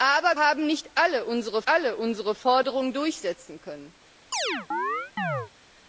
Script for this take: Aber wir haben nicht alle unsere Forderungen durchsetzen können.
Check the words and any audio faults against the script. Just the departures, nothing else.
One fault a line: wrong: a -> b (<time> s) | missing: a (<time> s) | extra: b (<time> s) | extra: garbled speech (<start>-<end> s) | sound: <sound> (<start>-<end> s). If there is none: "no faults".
missing: wir (0.4 s)
extra: alle unsere (1.7 s)
sound: chirp (4.3-5.5 s)